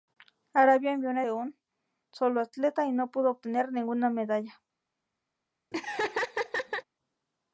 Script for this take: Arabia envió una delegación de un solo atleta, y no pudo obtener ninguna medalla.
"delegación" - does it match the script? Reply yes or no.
no